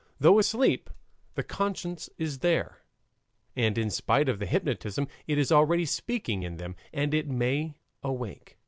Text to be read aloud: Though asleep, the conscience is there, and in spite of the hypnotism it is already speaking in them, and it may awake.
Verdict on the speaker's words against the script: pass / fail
pass